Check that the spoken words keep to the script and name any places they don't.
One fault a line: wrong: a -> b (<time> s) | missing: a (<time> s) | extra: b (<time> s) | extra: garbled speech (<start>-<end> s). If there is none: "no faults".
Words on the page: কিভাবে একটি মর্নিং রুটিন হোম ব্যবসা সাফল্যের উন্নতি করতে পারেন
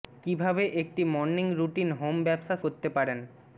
missing: সাফল্যের উন্নতি (2.5 s)